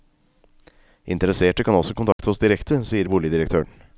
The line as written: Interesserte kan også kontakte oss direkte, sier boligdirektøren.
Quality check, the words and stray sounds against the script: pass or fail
fail